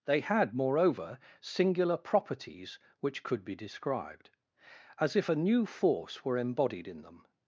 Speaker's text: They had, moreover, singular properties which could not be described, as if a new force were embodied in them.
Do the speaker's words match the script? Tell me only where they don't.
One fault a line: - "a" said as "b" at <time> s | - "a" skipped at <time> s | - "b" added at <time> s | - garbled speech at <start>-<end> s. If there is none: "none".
- "not" skipped at 3.5 s